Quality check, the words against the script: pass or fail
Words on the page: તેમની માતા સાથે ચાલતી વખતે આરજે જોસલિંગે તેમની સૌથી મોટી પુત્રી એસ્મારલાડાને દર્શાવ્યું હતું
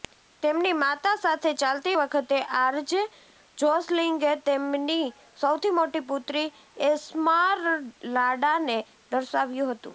pass